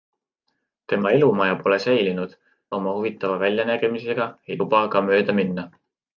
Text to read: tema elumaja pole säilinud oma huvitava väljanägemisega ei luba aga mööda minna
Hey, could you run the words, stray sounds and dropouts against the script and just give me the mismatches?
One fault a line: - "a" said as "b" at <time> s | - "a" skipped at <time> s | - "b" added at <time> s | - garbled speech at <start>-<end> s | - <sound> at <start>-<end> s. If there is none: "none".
none